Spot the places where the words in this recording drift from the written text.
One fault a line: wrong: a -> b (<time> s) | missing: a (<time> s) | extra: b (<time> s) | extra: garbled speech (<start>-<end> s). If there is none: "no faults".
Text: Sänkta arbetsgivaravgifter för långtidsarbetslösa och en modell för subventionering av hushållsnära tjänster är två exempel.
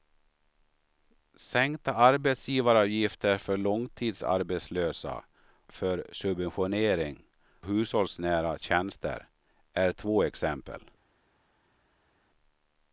missing: och en modell (5.2 s)
missing: av (7.2 s)